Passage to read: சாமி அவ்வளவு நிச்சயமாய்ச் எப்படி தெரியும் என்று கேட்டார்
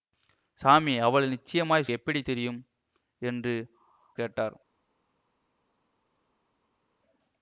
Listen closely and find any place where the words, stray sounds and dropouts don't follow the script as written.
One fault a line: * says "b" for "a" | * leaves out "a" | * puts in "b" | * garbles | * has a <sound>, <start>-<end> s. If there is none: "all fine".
all fine